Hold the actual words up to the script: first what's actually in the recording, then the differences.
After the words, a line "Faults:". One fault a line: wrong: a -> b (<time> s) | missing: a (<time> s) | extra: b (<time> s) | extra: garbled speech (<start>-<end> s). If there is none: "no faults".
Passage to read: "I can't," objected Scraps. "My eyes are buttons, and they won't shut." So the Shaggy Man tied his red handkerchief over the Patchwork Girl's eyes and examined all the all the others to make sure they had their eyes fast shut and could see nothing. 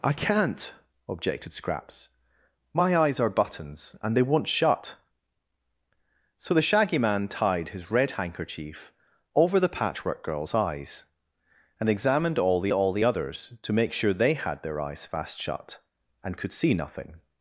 "I can't," objected Scraps. "My eyes are buttons, and they won't shut." So the Shaggy Man tied his red handkerchief over the Patchwork Girl's eyes and examined all the all the others to make sure they had their eyes fast shut and could see nothing.
Faults:
no faults